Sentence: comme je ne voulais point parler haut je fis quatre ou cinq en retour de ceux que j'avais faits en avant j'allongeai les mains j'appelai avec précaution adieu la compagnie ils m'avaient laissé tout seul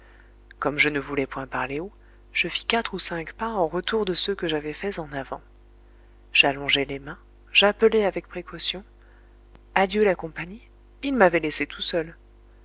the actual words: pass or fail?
fail